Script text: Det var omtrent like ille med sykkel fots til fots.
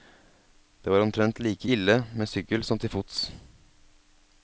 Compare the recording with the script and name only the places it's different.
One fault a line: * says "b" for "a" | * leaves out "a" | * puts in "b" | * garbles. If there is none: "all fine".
* says "som" for "fots"